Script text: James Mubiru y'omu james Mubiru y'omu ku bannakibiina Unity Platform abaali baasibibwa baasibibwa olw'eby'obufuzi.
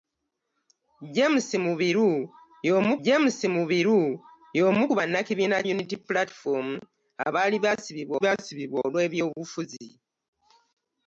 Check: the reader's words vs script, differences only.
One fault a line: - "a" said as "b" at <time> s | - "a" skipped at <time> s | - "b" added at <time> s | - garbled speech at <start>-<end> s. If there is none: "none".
none